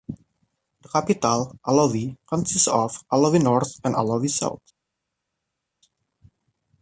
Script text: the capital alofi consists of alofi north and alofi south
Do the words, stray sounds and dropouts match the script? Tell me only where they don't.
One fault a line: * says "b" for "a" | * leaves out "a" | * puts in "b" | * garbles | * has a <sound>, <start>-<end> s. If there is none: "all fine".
all fine